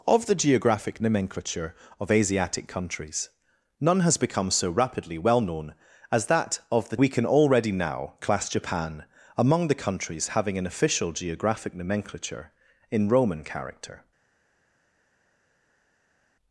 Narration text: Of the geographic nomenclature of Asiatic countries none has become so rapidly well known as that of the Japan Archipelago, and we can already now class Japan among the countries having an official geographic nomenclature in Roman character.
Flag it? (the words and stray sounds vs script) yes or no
yes